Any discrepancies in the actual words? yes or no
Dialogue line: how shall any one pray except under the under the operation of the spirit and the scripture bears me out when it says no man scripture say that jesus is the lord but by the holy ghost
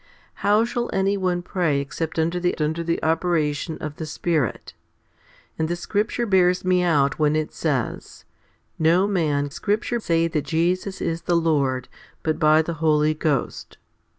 no